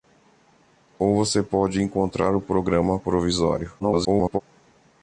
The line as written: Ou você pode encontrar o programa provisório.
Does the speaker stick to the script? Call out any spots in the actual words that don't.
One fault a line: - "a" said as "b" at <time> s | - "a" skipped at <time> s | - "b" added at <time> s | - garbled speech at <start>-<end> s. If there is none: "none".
- garbled speech at 3.8-4.4 s